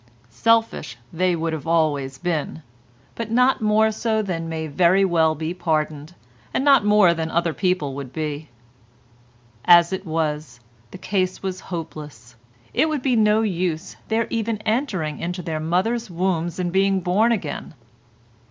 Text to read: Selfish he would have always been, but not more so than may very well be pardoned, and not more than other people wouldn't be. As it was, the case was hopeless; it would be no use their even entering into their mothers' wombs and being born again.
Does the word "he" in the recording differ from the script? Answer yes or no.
yes